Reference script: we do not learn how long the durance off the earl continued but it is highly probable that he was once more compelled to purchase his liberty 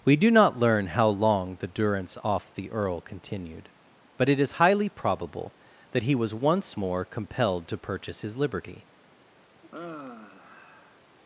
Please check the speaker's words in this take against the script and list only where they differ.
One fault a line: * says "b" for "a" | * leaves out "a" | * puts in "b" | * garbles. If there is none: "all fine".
all fine